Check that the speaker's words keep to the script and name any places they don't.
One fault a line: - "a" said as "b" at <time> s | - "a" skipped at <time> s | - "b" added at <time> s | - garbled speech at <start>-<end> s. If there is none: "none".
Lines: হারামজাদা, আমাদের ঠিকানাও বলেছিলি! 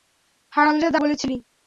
- "আমাদের ঠিকানাও" skipped at 1.0 s